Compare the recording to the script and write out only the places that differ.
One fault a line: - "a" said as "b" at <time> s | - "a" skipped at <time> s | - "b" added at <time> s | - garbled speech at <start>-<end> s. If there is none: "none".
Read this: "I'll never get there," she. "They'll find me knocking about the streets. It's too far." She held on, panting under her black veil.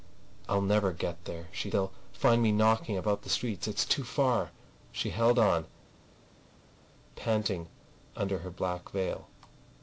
none